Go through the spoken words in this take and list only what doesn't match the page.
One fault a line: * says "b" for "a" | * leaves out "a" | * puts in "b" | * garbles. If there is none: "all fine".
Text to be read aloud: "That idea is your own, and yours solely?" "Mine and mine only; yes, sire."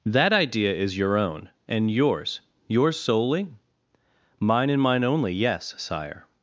* puts in "yours"